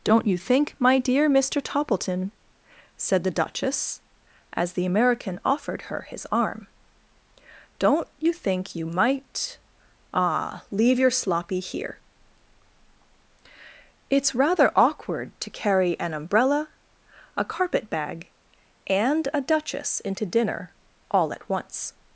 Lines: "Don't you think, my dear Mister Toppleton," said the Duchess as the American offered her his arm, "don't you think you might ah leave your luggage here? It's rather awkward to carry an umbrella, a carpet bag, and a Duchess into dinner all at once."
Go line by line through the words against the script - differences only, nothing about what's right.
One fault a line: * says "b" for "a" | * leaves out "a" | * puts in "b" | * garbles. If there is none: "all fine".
* says "sloppy" for "luggage"